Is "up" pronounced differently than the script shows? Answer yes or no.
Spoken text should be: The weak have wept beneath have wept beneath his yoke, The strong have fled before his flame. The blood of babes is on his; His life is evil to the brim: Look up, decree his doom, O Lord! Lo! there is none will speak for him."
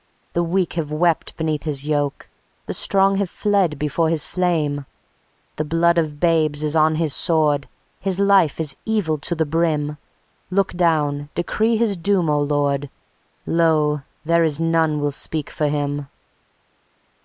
yes